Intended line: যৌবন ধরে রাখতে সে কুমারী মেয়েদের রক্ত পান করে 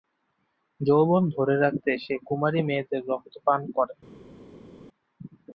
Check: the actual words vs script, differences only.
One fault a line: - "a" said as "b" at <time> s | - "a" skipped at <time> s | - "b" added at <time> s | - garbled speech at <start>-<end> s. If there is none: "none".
none